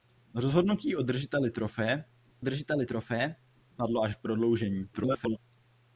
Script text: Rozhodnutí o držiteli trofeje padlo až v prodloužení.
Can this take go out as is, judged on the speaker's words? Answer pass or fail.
fail